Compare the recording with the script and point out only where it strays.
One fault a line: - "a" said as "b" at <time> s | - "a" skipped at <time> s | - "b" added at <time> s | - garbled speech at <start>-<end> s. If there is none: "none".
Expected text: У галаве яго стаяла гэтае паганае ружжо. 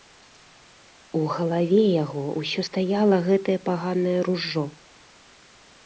- "ўсё" added at 2.4 s